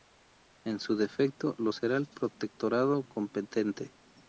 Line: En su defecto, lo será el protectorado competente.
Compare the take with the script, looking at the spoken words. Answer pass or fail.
pass